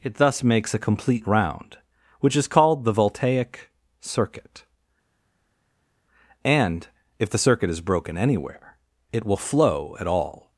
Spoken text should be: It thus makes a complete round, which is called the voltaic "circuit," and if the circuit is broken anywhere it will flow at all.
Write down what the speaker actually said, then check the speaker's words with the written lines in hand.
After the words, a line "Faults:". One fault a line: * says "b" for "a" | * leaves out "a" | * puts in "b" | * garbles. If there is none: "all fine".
It thus makes a complete round, which is called the voltaic "circuit," and if the circuit is broken anywhere it will flow at all.
Faults:
all fine